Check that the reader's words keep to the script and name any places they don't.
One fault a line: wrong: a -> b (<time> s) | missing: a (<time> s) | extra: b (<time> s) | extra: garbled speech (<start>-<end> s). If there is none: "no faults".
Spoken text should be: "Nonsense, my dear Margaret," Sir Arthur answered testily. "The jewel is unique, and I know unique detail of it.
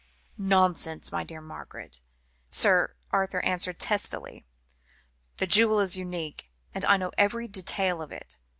wrong: unique -> every (7.2 s)